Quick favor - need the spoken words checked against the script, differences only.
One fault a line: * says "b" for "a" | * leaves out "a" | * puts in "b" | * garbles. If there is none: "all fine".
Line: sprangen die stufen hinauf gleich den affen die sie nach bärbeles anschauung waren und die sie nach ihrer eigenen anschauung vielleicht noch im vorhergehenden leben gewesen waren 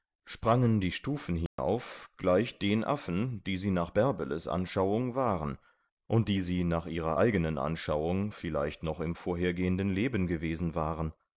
all fine